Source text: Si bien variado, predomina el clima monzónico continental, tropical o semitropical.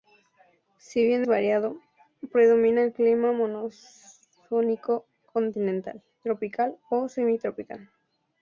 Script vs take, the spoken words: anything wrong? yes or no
no